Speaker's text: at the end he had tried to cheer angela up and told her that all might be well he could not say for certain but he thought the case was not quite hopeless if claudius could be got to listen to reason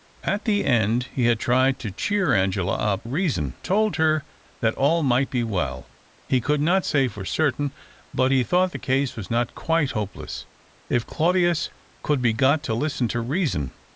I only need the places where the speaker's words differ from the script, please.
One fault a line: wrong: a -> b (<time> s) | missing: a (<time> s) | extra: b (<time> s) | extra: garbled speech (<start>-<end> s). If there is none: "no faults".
wrong: and -> reason (3.0 s)